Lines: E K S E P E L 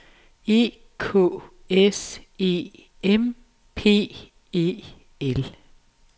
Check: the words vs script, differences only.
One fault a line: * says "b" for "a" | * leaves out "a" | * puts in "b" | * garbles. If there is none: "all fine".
* puts in "M"